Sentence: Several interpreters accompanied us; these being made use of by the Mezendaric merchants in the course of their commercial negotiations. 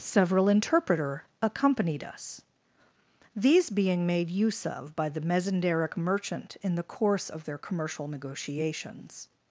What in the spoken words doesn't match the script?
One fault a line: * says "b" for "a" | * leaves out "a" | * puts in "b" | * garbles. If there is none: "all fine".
* says "interpreter" for "interpreters"
* says "merchant" for "merchants"